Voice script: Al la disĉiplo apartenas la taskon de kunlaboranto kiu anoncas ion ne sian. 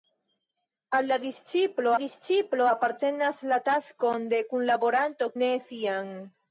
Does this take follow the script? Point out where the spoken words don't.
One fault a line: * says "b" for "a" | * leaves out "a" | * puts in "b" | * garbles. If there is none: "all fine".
* puts in "disĉiplo"
* leaves out "kiu anoncas ion"